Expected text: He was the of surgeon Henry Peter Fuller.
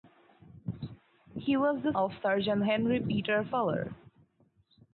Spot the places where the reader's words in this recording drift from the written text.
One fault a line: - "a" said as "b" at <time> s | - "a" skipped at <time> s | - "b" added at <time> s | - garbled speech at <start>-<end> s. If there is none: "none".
none